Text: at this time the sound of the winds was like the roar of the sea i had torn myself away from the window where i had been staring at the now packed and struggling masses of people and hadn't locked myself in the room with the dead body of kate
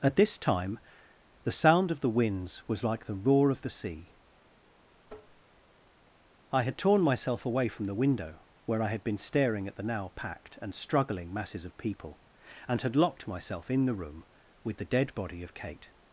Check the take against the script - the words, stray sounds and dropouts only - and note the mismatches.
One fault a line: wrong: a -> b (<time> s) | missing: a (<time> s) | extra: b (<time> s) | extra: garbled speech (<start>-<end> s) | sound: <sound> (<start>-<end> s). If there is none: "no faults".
sound: tap (5.1-5.4 s)
wrong: hadn't -> had (12.8 s)